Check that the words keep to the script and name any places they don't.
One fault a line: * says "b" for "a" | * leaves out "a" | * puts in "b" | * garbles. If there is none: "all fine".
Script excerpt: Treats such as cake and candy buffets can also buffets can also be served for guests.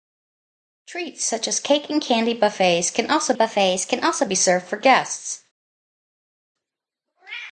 all fine